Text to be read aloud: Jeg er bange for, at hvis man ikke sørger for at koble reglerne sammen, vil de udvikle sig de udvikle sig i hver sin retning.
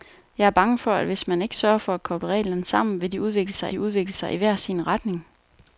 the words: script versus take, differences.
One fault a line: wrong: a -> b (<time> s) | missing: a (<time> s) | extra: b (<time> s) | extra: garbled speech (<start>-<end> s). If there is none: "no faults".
no faults